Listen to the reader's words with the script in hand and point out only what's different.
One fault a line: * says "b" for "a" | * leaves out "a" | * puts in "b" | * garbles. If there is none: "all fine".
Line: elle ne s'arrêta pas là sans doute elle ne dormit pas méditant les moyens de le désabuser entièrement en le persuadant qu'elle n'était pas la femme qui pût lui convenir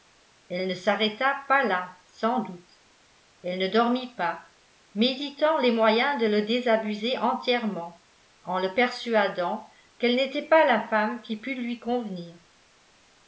all fine